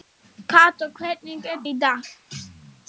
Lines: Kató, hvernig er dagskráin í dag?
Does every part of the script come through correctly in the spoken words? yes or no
no